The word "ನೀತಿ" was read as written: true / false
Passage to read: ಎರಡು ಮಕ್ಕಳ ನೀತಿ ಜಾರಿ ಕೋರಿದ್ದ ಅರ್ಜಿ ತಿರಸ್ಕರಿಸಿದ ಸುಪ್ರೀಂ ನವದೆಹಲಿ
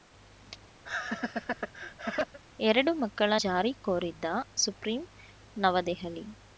false